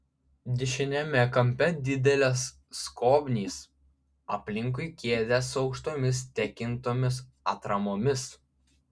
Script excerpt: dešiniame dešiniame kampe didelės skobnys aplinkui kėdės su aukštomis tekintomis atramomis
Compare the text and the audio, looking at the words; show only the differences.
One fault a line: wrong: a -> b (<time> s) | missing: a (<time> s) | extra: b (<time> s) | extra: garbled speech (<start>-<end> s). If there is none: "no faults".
missing: dešiniame (1.2 s)